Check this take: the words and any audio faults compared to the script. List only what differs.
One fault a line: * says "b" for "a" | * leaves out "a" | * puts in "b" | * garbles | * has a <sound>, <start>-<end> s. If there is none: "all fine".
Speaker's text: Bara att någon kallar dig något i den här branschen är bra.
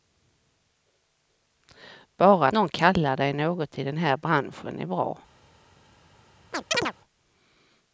* leaves out "att"
* has a chirp, 6.5-6.9 s